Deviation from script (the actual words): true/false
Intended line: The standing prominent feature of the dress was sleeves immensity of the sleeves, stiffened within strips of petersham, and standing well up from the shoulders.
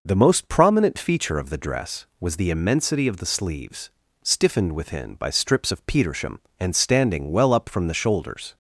true